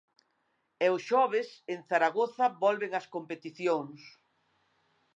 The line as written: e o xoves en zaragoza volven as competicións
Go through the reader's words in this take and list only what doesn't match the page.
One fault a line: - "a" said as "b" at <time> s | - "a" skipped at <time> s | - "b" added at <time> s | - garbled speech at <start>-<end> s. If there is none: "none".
none